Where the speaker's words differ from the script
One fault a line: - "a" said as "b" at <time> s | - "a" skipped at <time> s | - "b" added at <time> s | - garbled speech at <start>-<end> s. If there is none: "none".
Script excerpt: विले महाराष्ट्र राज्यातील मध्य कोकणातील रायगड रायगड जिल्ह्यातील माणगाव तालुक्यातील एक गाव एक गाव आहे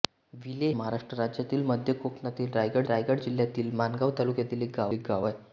none